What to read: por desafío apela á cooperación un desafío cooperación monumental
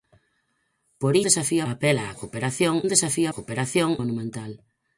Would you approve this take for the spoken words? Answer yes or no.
yes